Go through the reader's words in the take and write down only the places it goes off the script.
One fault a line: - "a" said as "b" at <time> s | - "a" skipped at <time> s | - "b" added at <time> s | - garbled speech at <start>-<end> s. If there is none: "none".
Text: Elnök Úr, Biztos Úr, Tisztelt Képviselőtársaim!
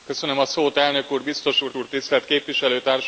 - "Úr" added at 1.7 s